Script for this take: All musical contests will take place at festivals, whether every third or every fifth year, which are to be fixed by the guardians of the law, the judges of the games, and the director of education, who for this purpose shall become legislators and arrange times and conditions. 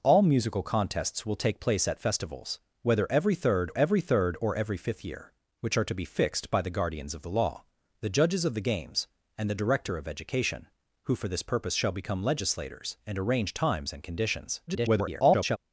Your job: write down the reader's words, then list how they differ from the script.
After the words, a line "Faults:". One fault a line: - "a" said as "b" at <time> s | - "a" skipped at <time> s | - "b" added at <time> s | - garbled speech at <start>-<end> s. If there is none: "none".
All musical contests will take place at festivals, whether every third every third or every fifth year, which are to be fixed by the guardians of the law, the judges of the games, and the director of education, who for this purpose shall become legislators and arrange times and conditions. [garbled]
Faults:
- "every third" added at 3.8 s
- garbled speech at 14.7-15.6 s